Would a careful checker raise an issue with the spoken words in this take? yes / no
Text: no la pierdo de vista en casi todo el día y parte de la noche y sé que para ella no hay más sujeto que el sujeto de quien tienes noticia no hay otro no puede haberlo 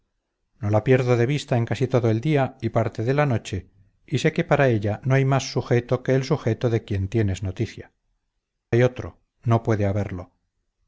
yes